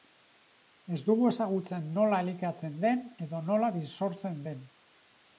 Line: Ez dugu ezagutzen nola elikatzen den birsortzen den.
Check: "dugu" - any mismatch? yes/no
no